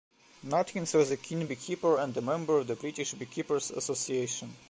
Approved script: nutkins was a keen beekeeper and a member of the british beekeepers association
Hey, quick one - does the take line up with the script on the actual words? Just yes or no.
yes